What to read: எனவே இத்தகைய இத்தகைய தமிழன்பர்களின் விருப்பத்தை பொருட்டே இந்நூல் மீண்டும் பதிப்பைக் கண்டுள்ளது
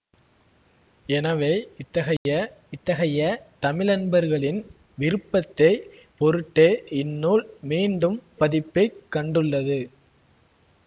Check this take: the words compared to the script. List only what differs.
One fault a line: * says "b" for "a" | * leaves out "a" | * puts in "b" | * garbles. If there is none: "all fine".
all fine